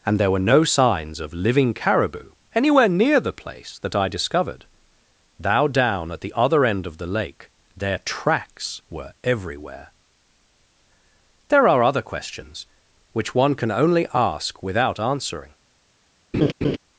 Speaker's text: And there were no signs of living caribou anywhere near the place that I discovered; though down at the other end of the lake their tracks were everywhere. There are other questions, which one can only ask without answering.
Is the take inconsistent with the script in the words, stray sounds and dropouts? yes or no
yes